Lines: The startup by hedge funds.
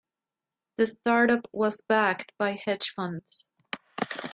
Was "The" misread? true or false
false